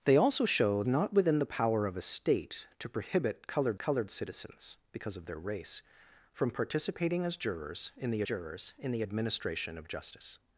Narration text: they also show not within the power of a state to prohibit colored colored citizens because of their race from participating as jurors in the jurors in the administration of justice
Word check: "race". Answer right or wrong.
right